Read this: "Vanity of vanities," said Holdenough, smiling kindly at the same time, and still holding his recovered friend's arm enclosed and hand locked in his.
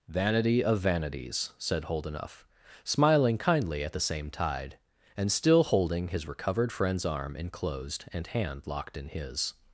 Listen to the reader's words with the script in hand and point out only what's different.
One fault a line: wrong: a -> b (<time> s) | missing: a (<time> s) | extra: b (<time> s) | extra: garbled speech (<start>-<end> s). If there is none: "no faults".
wrong: time -> tide (4.3 s)